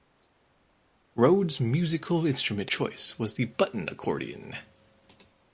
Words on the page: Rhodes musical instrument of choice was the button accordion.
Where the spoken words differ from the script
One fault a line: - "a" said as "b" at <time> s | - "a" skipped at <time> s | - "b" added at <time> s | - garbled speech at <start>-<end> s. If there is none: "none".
- "of" skipped at 2.7 s